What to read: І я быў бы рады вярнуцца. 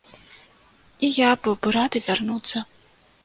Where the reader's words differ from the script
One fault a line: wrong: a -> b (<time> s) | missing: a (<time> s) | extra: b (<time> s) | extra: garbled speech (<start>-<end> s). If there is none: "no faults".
no faults